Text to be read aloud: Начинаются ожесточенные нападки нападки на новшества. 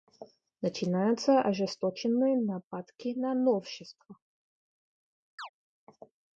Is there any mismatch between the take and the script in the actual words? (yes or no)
yes